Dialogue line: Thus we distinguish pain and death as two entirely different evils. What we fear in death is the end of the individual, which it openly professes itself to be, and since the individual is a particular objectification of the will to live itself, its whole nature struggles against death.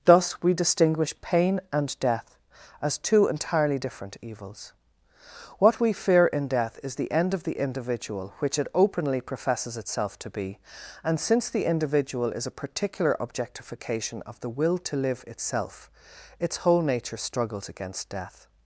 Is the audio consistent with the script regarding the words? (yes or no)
yes